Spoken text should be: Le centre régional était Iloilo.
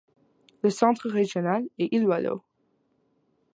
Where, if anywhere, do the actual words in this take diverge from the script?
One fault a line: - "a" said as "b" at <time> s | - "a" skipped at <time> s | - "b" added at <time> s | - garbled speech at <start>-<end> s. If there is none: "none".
- "était" said as "est" at 1.8 s